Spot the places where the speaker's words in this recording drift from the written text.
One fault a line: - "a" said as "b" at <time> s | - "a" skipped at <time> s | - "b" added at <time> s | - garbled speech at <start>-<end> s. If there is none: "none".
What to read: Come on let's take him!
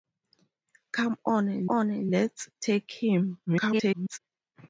- "on" added at 1.7 s
- garbled speech at 3.5-4.2 s